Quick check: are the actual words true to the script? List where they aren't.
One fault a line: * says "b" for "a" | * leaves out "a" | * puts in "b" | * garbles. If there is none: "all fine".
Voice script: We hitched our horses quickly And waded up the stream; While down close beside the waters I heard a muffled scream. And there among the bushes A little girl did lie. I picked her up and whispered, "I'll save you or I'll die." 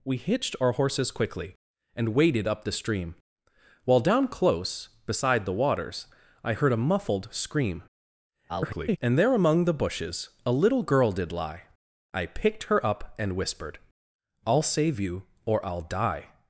* garbles